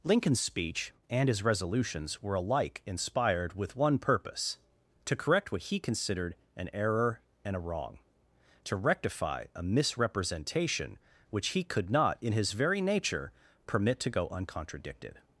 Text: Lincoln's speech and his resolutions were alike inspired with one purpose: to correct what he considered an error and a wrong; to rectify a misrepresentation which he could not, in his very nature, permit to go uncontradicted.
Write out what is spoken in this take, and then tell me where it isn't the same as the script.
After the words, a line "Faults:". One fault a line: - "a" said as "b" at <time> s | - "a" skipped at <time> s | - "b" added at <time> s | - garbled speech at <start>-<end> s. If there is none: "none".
Lincoln's speech and his resolutions were alike inspired with one purpose: to correct what he considered an error and a wrong; to rectify a misrepresentation which he could not, in his very nature, permit to go uncontradicted.
Faults:
none